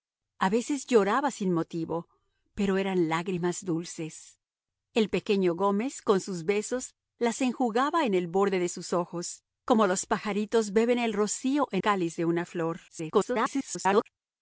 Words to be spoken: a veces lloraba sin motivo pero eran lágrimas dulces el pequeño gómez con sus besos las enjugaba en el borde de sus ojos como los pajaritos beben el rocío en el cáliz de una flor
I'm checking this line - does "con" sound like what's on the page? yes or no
yes